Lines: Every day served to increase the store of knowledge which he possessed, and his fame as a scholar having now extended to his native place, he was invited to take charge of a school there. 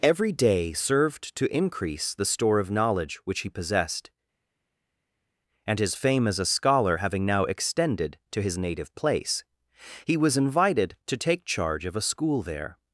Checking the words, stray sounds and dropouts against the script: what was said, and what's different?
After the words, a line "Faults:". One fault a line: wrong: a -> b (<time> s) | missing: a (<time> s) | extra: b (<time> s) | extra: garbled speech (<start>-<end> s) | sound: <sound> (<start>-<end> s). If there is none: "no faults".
Every day served to increase the store of knowledge which he possessed, and his fame as a scholar having now extended to his native place, he was invited to take charge of a school there.
Faults:
no faults